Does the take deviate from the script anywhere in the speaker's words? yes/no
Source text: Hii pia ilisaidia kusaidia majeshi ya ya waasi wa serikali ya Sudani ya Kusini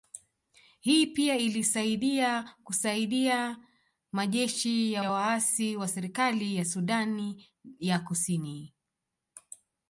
no